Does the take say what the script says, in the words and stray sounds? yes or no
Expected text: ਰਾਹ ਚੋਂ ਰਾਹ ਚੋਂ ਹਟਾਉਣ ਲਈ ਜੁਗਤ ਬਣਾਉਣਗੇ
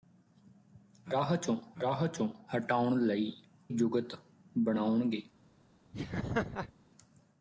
no